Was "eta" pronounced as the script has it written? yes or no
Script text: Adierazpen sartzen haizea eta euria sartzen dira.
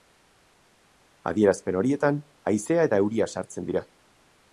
yes